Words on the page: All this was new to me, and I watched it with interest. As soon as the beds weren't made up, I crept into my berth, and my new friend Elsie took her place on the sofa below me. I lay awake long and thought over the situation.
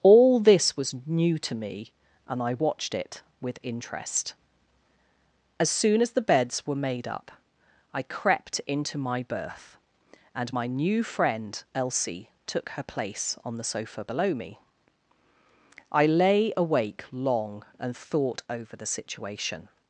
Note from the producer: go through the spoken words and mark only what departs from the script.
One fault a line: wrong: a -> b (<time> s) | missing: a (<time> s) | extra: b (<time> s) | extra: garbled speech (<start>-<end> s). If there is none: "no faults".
wrong: weren't -> were (6.6 s)